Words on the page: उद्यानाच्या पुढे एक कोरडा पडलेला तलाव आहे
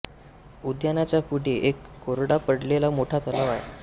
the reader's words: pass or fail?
fail